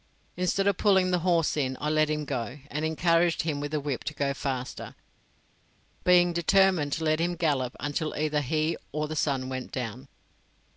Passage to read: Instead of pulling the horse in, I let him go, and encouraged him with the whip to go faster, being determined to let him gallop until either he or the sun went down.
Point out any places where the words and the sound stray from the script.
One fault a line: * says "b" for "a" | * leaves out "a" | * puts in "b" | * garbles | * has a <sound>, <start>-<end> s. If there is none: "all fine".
all fine